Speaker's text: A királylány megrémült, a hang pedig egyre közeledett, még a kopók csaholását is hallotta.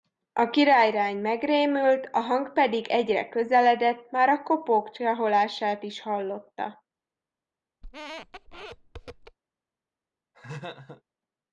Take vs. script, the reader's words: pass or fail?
fail